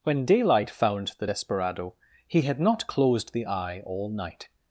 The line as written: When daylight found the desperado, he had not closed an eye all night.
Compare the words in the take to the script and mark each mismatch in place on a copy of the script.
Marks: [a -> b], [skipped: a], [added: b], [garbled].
When daylight found the desperado, he had not closed [an -> the] eye all night.